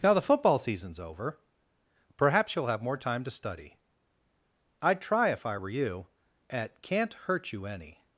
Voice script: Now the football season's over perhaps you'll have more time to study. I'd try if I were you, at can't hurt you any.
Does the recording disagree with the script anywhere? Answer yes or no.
no